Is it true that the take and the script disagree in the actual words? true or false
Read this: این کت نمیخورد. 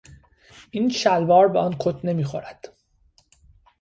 true